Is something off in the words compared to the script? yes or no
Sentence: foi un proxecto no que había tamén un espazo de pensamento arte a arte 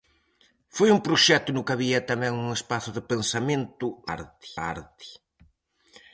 no